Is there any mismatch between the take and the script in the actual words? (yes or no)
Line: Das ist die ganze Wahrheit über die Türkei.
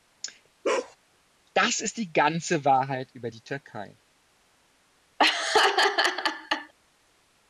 no